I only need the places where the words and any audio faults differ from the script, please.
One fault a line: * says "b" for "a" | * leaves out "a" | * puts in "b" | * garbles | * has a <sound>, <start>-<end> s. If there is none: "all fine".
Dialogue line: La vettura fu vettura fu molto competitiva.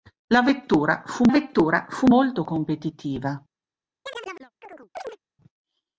* has a chirp, 4.0-5.2 s